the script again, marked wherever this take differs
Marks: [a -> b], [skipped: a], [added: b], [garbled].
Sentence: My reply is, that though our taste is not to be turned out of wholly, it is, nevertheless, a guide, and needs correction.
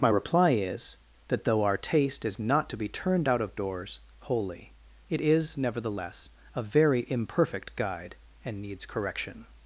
My reply is, that though our taste is not to be turned out of [added: doors] wholly, it is, nevertheless, a [added: very imperfect] guide, and needs correction.